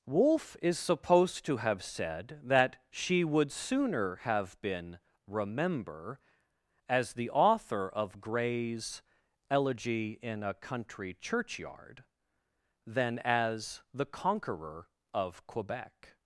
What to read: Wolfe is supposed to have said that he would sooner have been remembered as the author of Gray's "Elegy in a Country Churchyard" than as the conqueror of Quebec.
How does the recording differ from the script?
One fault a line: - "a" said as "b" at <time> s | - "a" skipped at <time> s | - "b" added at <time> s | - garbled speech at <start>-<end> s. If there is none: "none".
- "he" said as "she" at 2.9 s
- "remembered" said as "remember" at 5.3 s